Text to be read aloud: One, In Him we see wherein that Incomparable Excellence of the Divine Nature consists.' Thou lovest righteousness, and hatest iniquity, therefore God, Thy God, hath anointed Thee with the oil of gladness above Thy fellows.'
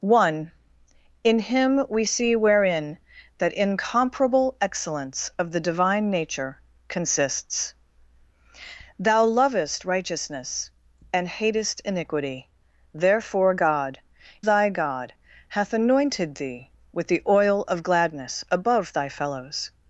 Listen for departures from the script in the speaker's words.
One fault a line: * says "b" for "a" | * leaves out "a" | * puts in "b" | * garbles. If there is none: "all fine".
all fine